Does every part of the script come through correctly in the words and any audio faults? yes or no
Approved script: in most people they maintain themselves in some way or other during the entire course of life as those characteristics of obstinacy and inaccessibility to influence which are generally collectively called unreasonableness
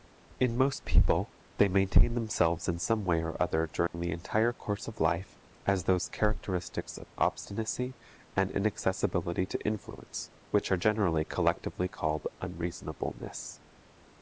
no